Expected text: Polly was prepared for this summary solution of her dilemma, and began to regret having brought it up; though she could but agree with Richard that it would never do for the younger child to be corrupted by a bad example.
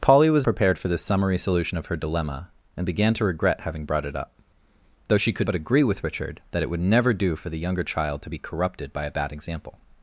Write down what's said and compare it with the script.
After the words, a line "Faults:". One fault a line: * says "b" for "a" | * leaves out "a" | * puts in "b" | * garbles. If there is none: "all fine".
Polly was prepared for this summary solution of her dilemma, and began to regret having brought it up; though she could but agree with Richard that it would never do for the younger child to be corrupted by a bad example.
Faults:
all fine